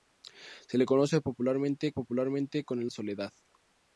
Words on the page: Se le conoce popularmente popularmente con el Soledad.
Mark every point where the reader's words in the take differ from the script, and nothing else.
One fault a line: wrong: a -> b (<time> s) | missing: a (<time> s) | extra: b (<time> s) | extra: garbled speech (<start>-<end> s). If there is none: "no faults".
no faults